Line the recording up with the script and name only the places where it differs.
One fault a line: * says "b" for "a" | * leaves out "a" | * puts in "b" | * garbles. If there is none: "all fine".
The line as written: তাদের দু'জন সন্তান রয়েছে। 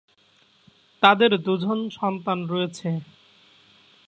all fine